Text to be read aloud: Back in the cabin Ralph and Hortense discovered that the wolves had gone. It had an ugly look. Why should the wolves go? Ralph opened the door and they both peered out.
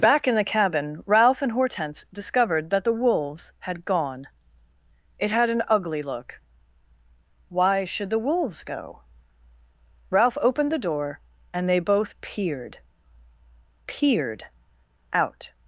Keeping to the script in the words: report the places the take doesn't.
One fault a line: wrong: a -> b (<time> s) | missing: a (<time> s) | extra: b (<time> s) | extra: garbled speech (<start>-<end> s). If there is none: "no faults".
extra: peered (13.9 s)